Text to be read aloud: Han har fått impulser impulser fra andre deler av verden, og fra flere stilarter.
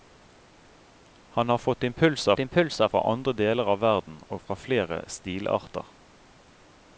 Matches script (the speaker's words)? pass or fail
pass